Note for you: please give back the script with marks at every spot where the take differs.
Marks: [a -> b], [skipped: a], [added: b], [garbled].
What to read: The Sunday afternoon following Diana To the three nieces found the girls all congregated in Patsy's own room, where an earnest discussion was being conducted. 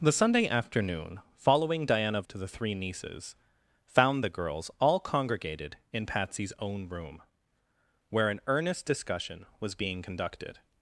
The Sunday afternoon following Diana To the three nieces found the girls all congregated in Patsy's own room, where an earnest discussion was being conducted.